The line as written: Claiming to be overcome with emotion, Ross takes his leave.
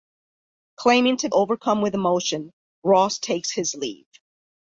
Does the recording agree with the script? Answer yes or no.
no